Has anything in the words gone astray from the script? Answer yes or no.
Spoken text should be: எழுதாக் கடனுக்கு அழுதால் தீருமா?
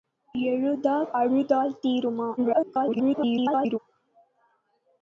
yes